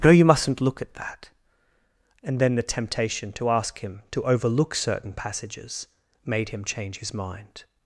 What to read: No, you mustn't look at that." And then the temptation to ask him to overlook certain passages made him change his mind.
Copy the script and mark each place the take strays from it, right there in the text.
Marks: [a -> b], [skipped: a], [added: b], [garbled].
No, you mustn't look at that." And then the temptation to ask him to overlook certain passages made him change his mind.